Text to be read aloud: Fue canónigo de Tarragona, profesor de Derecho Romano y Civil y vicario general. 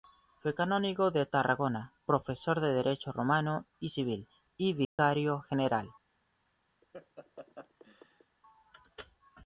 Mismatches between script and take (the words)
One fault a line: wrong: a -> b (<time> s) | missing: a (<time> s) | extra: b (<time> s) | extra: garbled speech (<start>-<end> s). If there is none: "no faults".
no faults